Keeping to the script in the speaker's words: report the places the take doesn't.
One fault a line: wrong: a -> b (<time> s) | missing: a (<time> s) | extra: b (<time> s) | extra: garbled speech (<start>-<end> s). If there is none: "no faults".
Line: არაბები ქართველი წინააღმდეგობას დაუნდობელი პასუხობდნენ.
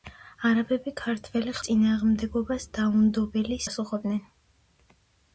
no faults